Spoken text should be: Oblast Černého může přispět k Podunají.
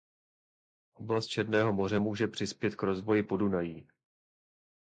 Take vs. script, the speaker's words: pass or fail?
fail